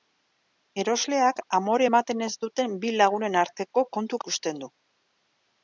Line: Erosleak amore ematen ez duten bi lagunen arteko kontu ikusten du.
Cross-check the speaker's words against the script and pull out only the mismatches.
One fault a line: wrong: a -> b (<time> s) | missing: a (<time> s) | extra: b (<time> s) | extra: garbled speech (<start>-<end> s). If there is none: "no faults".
no faults